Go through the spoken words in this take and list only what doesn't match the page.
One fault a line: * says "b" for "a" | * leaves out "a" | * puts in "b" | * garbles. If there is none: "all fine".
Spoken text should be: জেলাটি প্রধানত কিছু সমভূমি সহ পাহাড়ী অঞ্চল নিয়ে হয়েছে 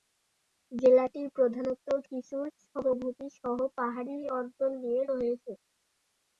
all fine